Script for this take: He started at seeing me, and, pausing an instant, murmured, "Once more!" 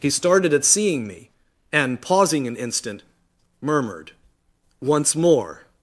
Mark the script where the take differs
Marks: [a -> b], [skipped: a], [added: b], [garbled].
He started at seeing me, and, pausing an instant, murmured, "Once more!"